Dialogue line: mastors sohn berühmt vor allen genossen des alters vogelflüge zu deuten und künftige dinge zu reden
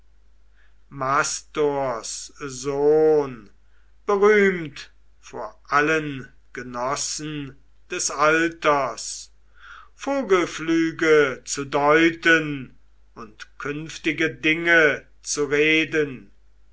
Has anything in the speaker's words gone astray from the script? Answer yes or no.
no